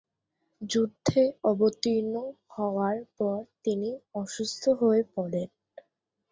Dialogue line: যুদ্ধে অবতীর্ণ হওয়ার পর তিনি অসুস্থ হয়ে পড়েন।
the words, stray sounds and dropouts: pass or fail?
pass